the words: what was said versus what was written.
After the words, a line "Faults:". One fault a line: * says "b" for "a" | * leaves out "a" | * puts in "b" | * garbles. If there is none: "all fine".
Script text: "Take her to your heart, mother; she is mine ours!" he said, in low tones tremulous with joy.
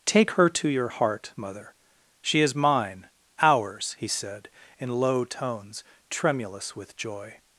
"Take her to your heart, mother; she is mine ours!" he said, in low tones tremulous with joy.
Faults:
all fine